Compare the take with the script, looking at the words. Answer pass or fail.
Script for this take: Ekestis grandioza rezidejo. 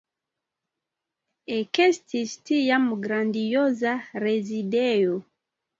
fail